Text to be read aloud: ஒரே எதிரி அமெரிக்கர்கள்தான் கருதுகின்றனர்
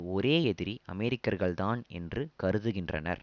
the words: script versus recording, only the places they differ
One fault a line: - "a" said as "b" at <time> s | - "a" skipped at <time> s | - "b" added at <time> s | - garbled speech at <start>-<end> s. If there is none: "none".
- "என்று" added at 1.9 s